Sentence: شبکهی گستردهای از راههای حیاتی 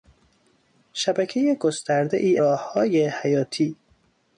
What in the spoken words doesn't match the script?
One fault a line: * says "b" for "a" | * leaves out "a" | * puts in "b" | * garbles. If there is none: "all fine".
* leaves out "از"